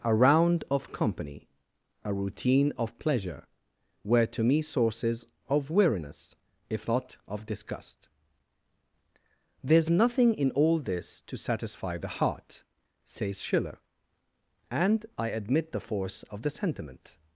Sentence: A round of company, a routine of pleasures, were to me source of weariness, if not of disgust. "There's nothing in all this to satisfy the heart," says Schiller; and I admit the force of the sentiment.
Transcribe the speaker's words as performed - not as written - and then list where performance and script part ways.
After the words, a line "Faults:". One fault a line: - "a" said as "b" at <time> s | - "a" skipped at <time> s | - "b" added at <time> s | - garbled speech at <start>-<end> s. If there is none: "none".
A round of company, a routine of pleasure, were to me sources of weariness, if not of disgust. "There's nothing in all this to satisfy the heart," says Schiller; and I admit the force of the sentiment.
Faults:
- "pleasures" said as "pleasure" at 3.0 s
- "source" said as "sources" at 4.6 s